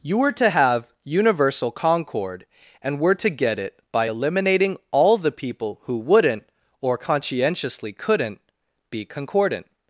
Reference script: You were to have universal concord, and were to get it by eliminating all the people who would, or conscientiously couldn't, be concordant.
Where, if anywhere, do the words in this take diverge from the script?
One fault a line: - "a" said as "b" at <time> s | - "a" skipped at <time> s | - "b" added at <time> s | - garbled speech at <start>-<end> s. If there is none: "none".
- "would" said as "wouldn't" at 6.0 s